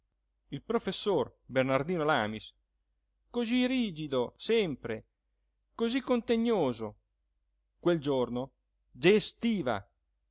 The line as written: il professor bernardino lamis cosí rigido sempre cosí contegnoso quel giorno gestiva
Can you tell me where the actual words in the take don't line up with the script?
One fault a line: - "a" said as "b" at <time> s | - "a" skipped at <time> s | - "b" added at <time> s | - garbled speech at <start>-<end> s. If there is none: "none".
none